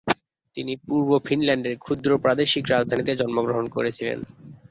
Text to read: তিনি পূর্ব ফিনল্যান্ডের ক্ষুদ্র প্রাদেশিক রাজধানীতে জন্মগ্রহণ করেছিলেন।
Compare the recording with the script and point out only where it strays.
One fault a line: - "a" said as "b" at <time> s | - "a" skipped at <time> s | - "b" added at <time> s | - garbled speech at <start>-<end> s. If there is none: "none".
none